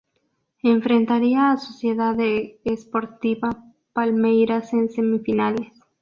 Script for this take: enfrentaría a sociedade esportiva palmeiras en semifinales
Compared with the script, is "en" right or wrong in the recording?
right